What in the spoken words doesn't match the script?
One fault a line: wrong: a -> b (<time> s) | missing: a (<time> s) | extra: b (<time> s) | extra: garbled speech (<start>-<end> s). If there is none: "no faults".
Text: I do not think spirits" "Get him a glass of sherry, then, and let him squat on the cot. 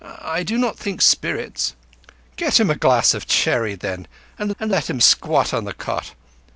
extra: and (4.6 s)